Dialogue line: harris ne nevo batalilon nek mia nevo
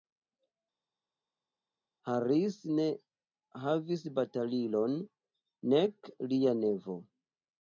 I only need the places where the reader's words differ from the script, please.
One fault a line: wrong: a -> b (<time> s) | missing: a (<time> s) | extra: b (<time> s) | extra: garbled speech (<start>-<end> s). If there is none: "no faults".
wrong: nevo -> havis (3.6 s)
wrong: mia -> lia (6.3 s)